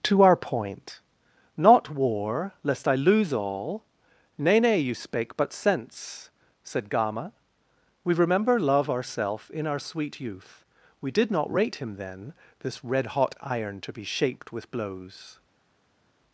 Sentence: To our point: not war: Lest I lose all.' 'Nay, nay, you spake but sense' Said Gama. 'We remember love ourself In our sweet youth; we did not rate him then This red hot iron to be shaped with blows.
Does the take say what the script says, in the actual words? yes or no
yes